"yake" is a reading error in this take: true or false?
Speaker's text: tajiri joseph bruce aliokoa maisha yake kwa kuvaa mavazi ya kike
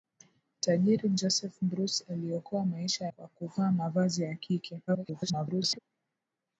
true